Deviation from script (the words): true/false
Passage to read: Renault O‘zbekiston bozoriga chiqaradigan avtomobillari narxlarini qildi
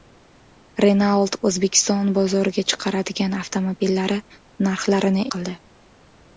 false